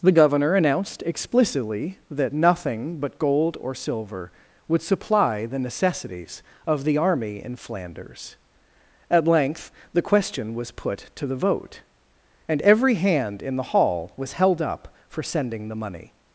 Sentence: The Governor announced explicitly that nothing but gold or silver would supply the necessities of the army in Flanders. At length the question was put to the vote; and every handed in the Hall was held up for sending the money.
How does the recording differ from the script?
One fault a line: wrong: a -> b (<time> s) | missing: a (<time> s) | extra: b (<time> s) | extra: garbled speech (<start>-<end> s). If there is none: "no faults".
wrong: handed -> hand (12.9 s)